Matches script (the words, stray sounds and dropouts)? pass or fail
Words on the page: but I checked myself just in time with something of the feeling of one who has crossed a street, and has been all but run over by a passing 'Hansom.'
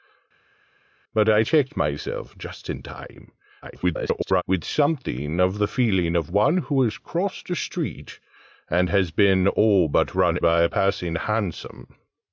fail